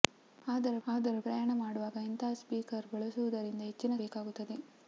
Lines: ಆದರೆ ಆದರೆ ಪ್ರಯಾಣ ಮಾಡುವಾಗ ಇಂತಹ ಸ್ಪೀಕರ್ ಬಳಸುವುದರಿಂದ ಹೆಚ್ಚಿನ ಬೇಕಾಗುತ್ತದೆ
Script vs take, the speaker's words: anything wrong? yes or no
no